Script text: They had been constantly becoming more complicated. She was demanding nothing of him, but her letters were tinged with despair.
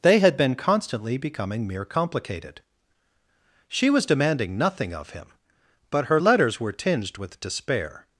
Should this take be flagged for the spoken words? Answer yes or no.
yes